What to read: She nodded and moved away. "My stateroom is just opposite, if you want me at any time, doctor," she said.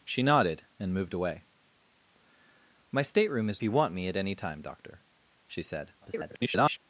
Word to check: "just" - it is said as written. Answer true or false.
false